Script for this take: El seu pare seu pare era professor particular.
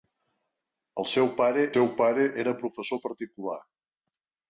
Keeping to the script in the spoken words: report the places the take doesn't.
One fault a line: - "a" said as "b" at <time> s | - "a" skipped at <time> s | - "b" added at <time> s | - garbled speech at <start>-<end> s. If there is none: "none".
none